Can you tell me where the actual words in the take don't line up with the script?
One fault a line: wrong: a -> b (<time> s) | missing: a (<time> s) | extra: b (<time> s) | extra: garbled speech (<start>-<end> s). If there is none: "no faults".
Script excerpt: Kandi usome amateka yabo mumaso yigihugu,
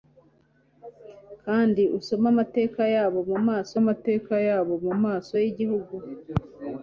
extra: amateka yabo mumaso (3.8 s)